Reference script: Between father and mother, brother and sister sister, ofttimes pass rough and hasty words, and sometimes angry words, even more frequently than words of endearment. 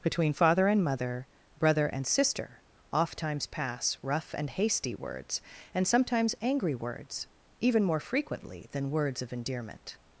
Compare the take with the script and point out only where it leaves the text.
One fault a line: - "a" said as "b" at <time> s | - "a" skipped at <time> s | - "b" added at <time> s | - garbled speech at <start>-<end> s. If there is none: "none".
- "sister" skipped at 2.6 s